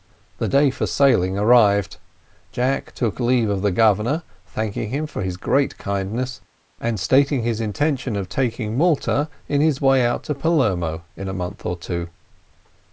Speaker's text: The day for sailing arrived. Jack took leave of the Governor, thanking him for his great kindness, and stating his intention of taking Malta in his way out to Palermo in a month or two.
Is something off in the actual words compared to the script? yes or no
no